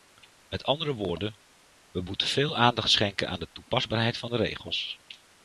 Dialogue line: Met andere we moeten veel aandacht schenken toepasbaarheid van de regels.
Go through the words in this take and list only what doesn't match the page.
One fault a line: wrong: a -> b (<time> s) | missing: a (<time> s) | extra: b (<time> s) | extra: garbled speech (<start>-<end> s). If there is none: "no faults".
extra: woorden (0.9 s)
extra: aan de (3.3 s)